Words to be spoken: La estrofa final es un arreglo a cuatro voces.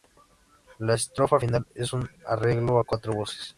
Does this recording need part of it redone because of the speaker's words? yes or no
no